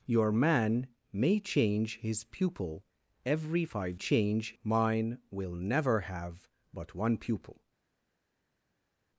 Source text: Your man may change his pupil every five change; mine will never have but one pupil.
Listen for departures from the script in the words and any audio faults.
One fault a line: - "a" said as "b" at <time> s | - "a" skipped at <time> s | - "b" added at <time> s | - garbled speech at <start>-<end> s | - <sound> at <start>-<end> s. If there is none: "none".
none